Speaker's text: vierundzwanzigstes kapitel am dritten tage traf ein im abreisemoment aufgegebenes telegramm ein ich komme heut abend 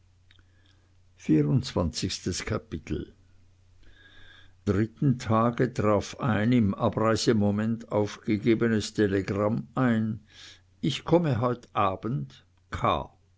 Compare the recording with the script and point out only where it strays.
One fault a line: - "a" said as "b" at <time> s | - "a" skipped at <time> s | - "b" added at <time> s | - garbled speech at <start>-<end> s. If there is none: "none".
- "am" skipped at 3.1 s